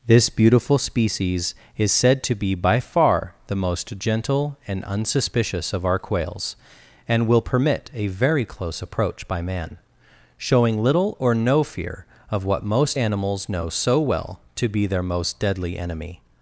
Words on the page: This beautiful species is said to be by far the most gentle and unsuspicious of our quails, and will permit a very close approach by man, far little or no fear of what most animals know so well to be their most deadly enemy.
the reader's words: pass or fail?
fail